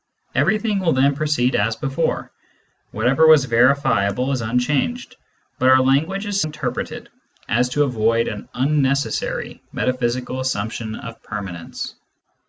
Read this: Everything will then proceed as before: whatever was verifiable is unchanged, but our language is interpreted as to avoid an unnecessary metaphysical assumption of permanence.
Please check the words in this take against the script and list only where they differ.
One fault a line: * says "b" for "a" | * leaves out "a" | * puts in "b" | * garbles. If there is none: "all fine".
all fine